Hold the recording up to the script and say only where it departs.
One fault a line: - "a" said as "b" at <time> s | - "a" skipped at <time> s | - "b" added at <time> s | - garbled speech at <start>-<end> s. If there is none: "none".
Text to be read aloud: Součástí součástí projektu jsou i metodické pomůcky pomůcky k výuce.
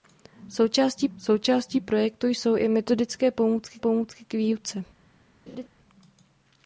none